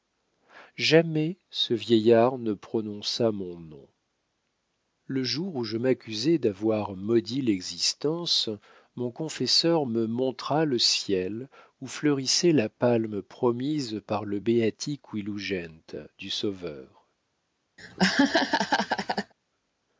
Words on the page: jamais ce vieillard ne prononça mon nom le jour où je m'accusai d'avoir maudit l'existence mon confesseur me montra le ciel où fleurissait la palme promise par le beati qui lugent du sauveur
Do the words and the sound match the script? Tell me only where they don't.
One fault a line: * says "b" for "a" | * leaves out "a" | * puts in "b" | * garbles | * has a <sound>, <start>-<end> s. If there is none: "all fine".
* has a laugh, 17.8-19.3 s